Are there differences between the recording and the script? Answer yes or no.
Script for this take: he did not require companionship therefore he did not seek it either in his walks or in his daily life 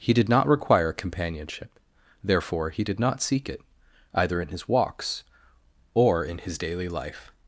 no